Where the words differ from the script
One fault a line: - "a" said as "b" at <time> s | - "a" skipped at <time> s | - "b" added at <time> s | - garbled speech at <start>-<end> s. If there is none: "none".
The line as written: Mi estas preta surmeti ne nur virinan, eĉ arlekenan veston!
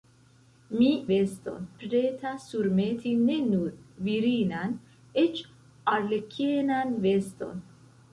- "estas" said as "veston" at 1.1 s